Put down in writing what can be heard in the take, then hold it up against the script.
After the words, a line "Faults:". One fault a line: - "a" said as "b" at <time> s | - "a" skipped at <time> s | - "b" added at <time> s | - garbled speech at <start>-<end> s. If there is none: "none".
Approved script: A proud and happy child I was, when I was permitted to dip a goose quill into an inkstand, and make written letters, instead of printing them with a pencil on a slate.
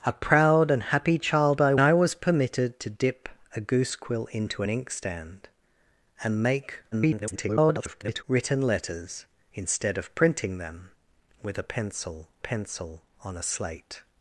A proud and happy child I I was permitted to dip a goose quill into an inkstand, and make [garbled] written letters, instead of printing them with a pencil pencil on a slate.
Faults:
- "was when" skipped at 1.8 s
- garbled speech at 6.9-8.2 s
- "pencil" added at 12.4 s